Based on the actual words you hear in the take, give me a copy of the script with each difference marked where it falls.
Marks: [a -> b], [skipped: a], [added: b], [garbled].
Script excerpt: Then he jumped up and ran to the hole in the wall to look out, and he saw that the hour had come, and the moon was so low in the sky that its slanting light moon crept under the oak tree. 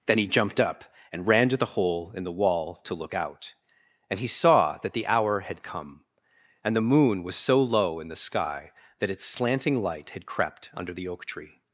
Then he jumped up and ran to the hole in the wall to look out, and he saw that the hour had come, and the moon was so low in the sky that its slanting light [moon -> had] crept under the oak tree.